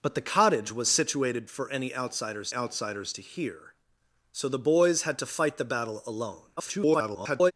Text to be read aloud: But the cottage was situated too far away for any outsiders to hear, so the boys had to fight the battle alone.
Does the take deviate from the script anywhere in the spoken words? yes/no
yes